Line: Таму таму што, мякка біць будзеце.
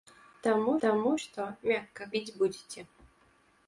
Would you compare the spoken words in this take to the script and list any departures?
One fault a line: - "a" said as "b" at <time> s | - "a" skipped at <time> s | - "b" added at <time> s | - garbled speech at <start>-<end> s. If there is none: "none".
none